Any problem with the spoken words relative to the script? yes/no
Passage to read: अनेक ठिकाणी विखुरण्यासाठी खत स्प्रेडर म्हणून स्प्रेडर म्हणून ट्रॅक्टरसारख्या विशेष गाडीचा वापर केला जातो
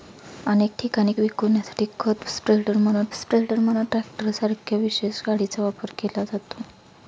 no